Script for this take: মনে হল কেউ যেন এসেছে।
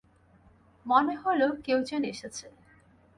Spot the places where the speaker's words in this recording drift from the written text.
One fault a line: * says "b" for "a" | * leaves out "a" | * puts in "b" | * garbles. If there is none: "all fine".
all fine